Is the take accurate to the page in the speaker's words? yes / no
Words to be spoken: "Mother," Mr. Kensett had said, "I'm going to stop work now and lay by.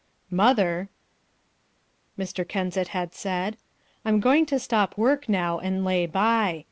yes